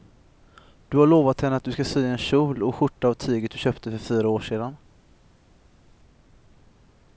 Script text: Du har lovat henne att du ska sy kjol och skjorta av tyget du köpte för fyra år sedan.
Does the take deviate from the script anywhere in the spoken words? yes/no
yes